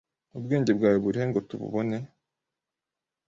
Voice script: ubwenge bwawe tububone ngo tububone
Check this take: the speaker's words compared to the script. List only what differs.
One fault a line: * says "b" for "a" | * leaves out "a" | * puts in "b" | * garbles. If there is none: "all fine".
* says "burihe" for "tububone"